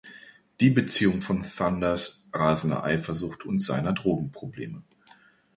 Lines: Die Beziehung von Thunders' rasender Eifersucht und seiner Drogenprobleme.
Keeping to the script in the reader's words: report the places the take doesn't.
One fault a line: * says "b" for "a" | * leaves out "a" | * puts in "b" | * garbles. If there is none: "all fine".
all fine